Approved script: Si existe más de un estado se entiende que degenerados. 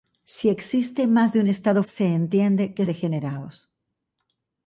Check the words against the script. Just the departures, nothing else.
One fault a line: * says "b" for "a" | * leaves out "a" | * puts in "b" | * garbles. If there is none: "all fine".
all fine